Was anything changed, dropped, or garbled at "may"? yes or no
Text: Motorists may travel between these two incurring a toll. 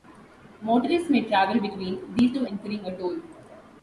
no